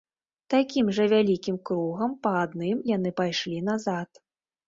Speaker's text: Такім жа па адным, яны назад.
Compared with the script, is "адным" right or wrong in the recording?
right